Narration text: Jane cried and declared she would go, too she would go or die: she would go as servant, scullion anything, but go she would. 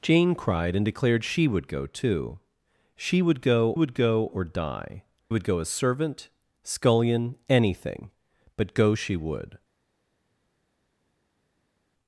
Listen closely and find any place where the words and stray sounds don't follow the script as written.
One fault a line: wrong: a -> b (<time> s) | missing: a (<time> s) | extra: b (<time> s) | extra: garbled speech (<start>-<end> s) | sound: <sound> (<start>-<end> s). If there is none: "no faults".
extra: would go (3.7 s)
missing: she (5.0 s)